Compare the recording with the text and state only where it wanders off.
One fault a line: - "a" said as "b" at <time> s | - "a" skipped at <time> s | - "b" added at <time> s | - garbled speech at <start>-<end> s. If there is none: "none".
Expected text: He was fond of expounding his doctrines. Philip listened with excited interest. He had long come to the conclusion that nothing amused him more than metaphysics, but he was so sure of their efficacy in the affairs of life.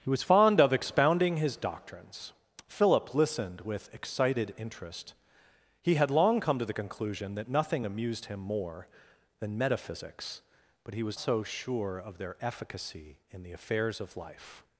none